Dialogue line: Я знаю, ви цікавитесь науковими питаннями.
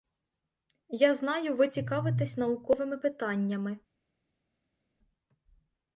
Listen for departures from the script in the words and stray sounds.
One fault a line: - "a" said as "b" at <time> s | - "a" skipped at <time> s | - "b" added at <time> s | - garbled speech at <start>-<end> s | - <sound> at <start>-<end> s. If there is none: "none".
none